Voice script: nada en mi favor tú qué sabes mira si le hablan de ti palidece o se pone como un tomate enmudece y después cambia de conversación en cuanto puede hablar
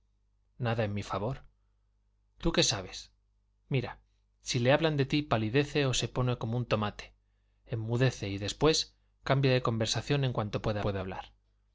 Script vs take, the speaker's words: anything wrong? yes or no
yes